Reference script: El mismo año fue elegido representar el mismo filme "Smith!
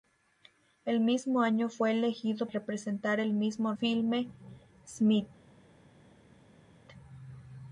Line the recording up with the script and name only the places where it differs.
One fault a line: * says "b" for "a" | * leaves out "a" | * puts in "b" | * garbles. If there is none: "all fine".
all fine